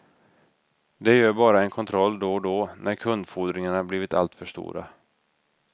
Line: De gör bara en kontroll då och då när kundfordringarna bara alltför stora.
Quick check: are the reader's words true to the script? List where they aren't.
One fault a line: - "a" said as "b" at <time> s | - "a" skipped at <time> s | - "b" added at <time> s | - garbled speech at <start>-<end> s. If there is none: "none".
- "bara" said as "blivit" at 3.8 s